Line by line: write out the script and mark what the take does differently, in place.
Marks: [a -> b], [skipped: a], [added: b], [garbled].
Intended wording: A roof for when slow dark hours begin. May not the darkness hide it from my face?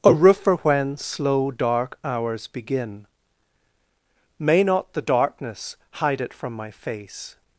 A roof for when slow dark hours begin. May not the darkness hide it from my face?